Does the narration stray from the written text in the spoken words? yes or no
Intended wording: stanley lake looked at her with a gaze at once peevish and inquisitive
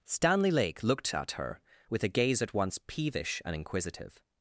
no